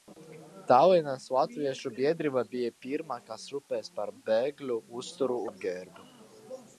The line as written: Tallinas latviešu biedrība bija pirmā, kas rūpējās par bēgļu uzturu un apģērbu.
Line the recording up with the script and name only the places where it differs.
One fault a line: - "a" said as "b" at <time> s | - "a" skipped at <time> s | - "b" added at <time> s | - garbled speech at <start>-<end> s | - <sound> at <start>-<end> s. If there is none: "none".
- "un" skipped at 5.4 s